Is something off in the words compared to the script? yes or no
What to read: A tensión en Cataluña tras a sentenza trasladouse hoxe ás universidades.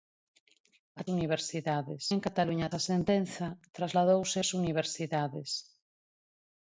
yes